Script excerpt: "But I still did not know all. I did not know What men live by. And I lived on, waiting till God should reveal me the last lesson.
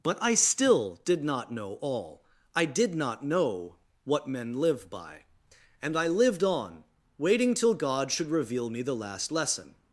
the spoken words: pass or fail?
pass